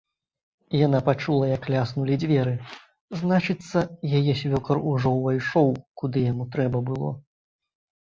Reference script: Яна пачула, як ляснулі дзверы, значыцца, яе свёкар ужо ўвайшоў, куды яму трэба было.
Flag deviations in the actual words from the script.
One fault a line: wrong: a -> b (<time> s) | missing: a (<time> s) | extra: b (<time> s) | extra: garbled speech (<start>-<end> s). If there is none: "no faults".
no faults